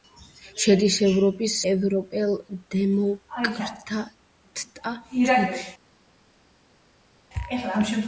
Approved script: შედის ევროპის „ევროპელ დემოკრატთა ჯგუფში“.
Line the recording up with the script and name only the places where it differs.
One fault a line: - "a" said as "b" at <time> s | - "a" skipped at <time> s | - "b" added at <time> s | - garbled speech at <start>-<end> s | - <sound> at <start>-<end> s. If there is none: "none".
none